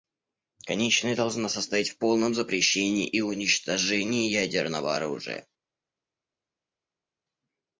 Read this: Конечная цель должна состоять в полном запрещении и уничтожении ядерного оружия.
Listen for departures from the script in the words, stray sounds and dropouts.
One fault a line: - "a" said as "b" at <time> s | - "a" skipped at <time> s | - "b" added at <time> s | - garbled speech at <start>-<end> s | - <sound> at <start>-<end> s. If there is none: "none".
- "цель" skipped at 1.1 s